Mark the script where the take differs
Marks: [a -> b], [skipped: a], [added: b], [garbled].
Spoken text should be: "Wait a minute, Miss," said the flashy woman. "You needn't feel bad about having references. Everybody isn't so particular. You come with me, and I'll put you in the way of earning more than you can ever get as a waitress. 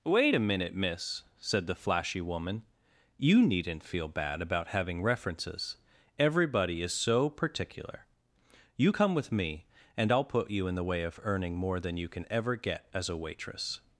"Wait a minute, Miss," said the flashy woman. "You needn't feel bad about having references. Everybody [isn't -> is] so particular. You come with me, and I'll put you in the way of earning more than you can ever get as a waitress.